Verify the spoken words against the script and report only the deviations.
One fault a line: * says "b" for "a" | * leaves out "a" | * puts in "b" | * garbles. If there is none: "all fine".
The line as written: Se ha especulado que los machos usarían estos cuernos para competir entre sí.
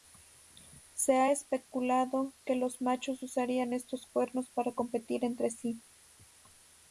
all fine